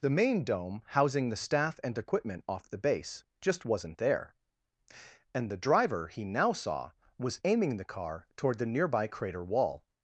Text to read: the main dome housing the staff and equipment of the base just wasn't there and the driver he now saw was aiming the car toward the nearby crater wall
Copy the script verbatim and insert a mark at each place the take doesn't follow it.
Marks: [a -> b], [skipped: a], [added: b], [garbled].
the main dome housing the staff and equipment [of -> off] the base just wasn't there and the driver he now saw was aiming the car toward the nearby crater wall